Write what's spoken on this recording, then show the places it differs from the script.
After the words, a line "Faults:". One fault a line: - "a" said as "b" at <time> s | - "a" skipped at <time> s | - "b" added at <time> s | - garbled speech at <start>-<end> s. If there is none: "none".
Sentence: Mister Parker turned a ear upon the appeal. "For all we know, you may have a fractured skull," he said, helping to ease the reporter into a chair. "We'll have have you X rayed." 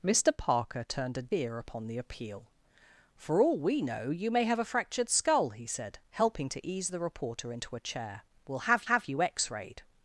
Mister Parker turned a ear upon the appeal. "For all we know, you may have a fractured skull," he said, helping to ease the reporter into a chair. "We'll have have you X rayed."
Faults:
none